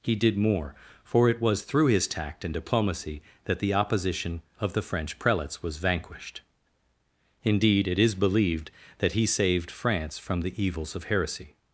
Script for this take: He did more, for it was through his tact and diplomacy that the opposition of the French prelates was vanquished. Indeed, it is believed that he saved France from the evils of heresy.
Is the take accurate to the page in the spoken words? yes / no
yes